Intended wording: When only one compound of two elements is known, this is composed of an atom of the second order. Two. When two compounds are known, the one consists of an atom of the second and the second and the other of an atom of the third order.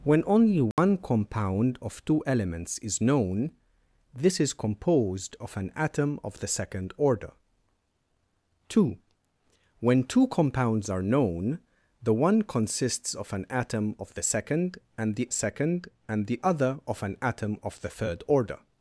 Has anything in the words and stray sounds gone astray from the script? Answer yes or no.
yes